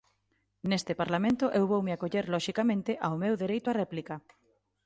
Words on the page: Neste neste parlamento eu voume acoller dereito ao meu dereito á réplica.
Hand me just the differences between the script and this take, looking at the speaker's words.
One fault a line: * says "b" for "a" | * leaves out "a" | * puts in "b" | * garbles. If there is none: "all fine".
* leaves out "neste"
* says "loxicamente" for "dereito"